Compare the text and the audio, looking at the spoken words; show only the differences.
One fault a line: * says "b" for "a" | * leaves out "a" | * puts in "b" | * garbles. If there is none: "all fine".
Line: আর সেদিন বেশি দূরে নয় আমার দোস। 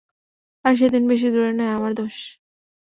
all fine